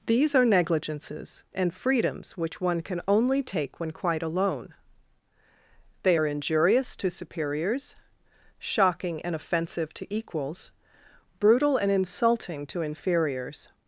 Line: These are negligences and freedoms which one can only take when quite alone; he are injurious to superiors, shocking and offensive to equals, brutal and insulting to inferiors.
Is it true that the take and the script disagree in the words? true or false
true